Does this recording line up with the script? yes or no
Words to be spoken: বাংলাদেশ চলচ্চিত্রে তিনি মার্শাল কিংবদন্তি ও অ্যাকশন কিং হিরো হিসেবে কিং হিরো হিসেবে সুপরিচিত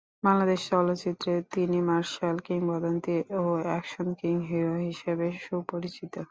no